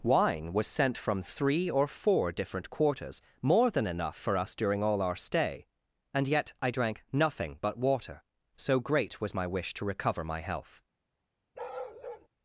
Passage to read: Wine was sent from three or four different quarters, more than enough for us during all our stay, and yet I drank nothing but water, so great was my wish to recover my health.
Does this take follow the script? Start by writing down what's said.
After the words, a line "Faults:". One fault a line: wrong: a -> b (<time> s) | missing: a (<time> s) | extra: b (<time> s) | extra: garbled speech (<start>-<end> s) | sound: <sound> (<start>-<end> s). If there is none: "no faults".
Wine was sent from three or four different quarters, more than enough for us during all our stay, and yet I drank nothing but water, so great was my wish to recover my health.
Faults:
sound: bark (11.5-12.3 s)